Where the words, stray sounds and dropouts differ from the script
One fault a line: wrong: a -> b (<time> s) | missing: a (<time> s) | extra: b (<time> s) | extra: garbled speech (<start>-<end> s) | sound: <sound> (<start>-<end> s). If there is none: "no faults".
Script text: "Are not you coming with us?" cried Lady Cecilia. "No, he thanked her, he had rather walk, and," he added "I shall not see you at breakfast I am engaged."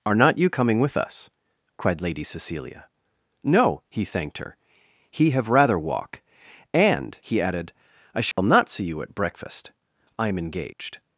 wrong: had -> have (5.3 s)
sound: dropout (8.3-8.4 s)